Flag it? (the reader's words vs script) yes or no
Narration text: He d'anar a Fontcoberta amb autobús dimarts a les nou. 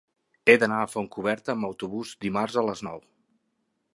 no